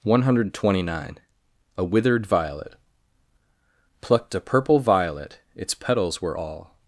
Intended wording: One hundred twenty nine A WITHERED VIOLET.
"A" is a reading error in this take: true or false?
false